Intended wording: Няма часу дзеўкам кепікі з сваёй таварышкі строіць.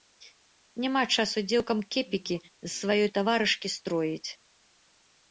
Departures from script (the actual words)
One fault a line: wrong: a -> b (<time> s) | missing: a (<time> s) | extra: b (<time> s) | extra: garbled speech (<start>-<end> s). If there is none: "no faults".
no faults